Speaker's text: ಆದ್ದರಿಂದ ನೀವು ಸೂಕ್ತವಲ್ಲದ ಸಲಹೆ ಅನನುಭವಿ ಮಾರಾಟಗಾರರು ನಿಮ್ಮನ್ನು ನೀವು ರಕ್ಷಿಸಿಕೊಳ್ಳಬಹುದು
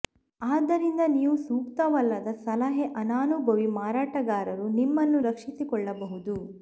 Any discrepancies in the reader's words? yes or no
yes